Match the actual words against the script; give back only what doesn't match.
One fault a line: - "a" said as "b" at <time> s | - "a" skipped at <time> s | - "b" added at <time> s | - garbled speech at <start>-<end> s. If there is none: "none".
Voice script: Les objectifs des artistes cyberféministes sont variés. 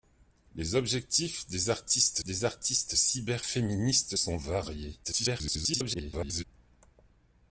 - "des artistes" added at 2.2 s
- garbled speech at 5.0-6.4 s